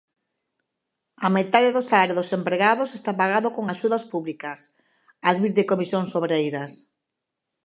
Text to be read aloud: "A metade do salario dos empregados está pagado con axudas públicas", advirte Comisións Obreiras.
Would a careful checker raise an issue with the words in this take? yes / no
no